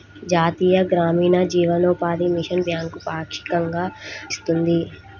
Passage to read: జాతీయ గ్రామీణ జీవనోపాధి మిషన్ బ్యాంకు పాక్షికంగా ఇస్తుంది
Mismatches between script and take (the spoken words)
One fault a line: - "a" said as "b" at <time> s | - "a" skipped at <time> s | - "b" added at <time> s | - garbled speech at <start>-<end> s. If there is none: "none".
none